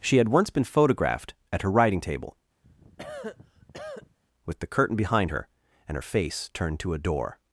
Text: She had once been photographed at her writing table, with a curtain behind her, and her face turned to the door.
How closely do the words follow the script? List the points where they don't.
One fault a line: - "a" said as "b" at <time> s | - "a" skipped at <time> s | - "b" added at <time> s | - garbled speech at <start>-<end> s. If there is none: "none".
- "a" said as "the" at 4.6 s
- "the" said as "a" at 6.9 s